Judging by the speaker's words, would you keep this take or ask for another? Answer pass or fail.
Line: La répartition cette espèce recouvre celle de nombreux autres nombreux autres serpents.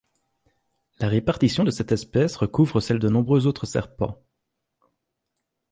fail